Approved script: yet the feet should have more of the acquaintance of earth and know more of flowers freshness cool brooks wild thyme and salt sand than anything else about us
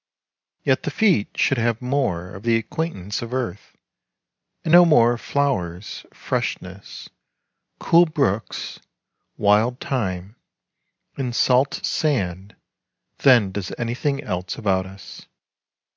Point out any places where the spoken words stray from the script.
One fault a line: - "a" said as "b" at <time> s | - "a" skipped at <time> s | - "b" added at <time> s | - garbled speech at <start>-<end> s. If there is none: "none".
- "does" added at 13.5 s